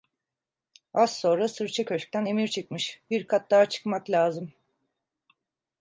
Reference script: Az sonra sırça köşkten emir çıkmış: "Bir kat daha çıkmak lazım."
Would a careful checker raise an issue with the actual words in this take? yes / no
no